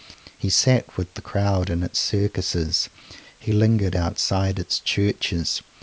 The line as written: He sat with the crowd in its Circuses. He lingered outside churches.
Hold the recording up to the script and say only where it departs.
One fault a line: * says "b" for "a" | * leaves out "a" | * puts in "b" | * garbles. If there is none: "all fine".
* puts in "its"